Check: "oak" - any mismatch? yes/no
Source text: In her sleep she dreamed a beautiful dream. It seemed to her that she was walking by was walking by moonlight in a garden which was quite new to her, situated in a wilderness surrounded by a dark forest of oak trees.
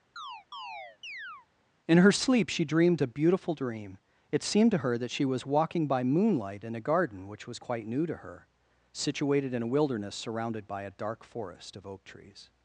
no